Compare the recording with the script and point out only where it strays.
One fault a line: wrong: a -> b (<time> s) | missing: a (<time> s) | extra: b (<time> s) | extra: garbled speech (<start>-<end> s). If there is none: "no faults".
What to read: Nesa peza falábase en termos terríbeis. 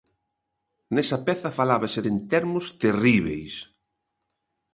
no faults